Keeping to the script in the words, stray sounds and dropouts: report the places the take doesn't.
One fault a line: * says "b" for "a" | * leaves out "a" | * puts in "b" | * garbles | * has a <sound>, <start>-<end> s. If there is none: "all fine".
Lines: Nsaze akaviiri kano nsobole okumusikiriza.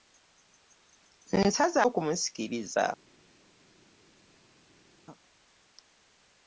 * leaves out "akaviiri kano nsobole"